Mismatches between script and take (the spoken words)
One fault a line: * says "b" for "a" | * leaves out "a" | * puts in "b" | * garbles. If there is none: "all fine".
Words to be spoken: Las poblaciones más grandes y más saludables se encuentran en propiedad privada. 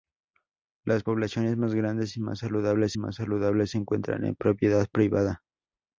* puts in "más saludables"